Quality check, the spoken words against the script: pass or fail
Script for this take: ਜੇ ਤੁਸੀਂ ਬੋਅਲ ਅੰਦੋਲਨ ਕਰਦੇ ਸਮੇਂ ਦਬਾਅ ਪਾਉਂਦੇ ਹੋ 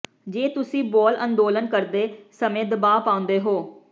pass